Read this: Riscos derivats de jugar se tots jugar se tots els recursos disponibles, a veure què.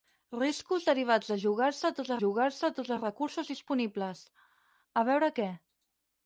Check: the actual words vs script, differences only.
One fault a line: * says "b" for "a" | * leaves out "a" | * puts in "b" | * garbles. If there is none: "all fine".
all fine